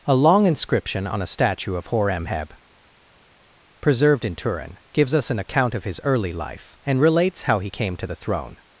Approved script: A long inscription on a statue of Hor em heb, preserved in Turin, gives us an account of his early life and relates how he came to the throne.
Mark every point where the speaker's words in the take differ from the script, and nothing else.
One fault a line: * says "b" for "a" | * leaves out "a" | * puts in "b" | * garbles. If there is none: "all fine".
all fine